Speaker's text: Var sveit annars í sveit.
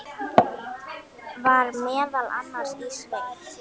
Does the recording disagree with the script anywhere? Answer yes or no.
yes